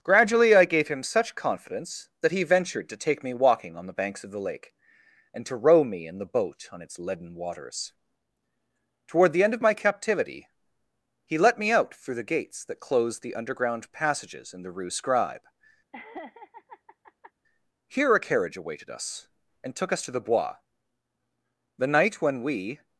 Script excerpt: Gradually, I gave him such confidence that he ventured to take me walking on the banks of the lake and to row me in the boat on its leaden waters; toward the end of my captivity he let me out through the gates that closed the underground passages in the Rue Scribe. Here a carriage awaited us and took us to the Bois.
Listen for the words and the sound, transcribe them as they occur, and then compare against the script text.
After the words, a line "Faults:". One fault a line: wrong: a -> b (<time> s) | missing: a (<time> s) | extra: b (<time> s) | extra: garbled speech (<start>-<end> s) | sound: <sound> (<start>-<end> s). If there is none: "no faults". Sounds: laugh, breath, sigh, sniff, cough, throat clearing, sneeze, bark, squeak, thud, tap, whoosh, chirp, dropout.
Gradually, I gave him such confidence that he ventured to take me walking on the banks of the lake and to row me in the boat on its leaden waters; toward the end of my captivity he let me out through the gates that closed the underground passages in the Rue Scribe. Here a carriage awaited us and took us to the Bois. The night when we
Faults:
sound: laugh (15.9-17.3 s)
extra: The night when we (21.8 s)